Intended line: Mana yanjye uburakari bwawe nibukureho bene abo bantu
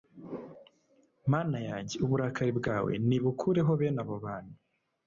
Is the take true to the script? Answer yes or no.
yes